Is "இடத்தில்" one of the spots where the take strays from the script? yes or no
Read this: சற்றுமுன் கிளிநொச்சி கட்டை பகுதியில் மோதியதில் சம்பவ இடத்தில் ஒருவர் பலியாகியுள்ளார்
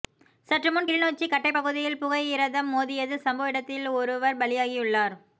no